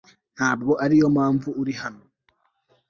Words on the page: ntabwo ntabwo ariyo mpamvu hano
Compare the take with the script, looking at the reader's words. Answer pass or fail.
fail